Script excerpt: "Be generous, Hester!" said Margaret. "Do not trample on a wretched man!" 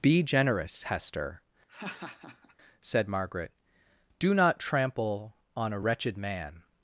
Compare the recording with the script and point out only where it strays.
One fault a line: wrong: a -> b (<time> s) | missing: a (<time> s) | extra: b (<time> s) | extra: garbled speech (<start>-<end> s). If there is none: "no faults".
no faults